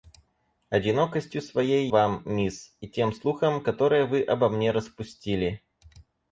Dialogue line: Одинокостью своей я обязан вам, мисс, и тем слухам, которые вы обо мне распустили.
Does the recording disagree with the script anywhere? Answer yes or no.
yes